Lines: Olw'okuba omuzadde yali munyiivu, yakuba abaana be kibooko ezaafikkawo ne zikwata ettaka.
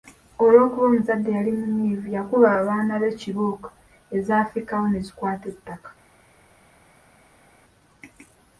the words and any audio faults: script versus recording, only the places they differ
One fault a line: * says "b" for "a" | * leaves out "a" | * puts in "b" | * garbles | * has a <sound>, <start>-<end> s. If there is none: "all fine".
all fine